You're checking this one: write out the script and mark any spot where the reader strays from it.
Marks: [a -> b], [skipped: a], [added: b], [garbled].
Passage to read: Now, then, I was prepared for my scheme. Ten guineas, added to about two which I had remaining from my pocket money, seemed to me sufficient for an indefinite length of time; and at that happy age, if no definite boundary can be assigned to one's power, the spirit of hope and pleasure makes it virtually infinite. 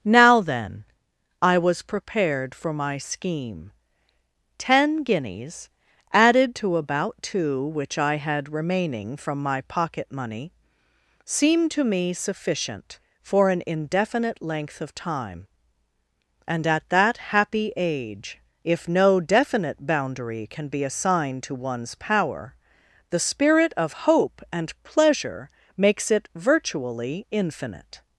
Now, then, I was prepared for my scheme. Ten guineas, added to about two which I had remaining from my pocket money, seemed to me sufficient for an indefinite length of time; and at that happy age, if no definite boundary can be assigned to one's power, the spirit of hope and pleasure makes it virtually infinite.